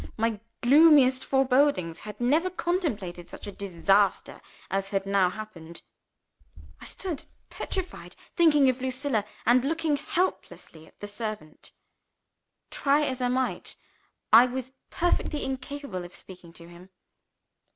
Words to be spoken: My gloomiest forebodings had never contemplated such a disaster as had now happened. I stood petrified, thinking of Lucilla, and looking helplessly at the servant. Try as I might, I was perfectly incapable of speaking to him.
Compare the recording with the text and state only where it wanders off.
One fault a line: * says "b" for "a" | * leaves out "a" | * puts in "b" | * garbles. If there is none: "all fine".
all fine